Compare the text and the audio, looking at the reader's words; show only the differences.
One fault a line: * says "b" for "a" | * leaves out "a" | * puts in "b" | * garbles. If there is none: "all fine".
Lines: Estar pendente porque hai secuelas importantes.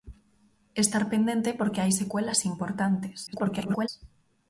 * garbles